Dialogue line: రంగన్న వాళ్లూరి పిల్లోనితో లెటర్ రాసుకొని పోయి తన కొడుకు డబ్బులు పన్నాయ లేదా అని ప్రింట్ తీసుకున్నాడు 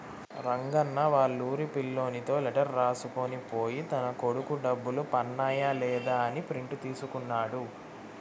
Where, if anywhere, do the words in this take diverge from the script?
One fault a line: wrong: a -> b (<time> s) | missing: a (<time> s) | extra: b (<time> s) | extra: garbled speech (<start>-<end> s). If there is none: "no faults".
no faults